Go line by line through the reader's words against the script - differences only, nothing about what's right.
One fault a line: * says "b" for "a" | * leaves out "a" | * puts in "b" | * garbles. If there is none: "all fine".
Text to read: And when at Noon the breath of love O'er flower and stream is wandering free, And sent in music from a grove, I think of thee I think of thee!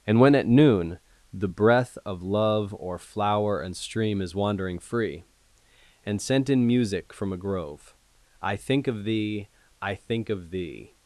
all fine